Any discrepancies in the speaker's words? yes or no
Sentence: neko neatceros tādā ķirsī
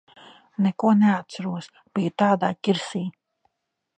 yes